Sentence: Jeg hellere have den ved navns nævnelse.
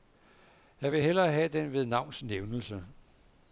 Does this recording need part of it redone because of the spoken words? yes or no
yes